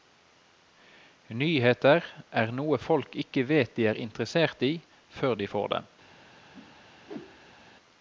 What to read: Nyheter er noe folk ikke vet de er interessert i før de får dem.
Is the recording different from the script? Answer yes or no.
no